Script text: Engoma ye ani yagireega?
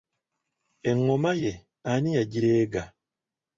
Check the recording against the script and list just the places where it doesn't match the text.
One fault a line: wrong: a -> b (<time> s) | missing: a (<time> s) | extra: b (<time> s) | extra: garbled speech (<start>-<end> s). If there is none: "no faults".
no faults